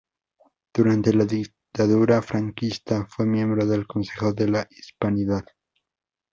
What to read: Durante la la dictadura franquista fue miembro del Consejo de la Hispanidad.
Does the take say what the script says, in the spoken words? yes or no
no